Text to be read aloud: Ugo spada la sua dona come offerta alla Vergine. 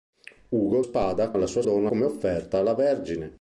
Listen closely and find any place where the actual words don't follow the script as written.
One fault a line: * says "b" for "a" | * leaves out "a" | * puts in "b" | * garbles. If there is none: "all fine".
all fine